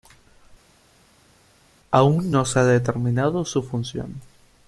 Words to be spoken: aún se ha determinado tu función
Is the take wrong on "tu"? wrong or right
wrong